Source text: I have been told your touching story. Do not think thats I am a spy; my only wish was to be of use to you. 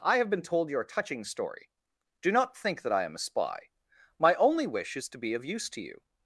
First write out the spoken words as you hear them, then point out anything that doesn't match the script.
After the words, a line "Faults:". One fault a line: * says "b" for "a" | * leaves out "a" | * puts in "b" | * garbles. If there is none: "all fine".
I have been told your touching story. Do not think that I am a spy; my only wish is to be of use to you.
Faults:
* says "that" for "thats"
* says "is" for "was"